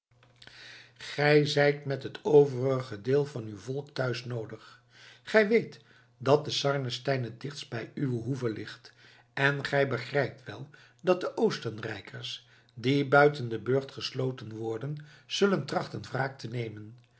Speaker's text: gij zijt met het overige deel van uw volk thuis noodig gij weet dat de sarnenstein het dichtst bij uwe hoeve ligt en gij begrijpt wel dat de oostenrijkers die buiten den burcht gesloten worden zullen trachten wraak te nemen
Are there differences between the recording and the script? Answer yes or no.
no